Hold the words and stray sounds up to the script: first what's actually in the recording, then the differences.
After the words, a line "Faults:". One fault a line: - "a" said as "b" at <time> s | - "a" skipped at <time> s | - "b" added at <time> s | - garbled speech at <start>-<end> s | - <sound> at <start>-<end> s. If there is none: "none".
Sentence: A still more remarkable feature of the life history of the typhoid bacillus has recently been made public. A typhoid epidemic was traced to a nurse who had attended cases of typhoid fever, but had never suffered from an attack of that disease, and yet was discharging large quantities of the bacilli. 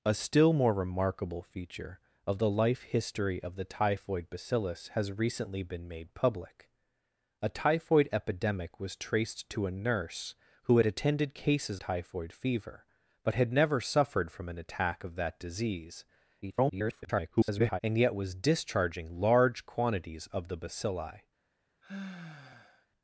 A still more remarkable feature of the life history of the typhoid bacillus has recently been made public. A typhoid epidemic was traced to a nurse who had attended cases typhoid fever, but had never suffered from an attack of that disease, [garbled] and yet was discharging large quantities of the bacilli.
Faults:
- "of" skipped at 11.8 s
- garbled speech at 16.4-17.8 s
- sigh at 21.8-22.9 s